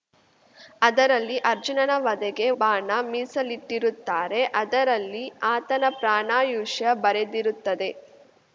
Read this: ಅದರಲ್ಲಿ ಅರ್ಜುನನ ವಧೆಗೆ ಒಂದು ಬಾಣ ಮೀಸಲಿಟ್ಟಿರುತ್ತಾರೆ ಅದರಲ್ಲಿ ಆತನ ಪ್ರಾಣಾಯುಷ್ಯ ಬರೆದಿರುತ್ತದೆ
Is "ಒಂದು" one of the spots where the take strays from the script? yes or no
yes